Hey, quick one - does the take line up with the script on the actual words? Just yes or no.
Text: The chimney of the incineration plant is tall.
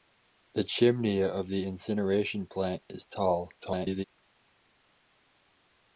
no